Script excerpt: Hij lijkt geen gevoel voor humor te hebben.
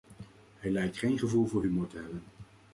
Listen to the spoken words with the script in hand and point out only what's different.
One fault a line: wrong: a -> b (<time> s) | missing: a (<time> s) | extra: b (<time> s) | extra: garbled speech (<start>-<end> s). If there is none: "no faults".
no faults